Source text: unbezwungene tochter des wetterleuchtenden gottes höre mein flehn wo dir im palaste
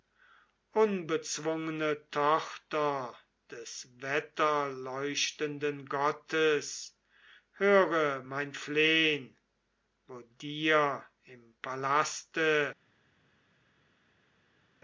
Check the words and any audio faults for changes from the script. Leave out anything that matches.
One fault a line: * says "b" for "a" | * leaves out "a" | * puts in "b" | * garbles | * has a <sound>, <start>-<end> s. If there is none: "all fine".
all fine